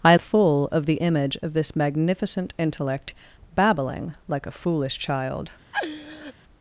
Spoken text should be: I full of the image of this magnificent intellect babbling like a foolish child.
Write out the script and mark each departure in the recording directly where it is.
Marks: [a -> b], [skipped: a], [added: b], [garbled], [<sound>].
I full of the image of this magnificent intellect babbling like a foolish child. [laugh]